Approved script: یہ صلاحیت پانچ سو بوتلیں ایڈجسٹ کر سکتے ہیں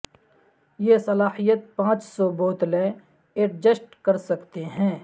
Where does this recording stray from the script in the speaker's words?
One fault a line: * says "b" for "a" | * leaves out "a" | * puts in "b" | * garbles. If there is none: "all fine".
all fine